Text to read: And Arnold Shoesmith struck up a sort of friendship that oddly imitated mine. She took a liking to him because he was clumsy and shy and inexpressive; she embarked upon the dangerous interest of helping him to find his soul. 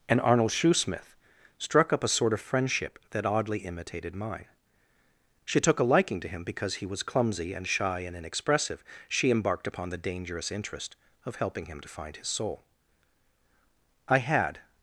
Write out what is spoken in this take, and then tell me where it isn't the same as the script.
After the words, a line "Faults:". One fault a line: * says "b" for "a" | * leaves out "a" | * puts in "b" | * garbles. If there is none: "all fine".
And Arnold Shoesmith struck up a sort of friendship that oddly imitated mine. She took a liking to him because he was clumsy and shy and inexpressive; she embarked upon the dangerous interest of helping him to find his soul. I had
Faults:
* puts in "I had"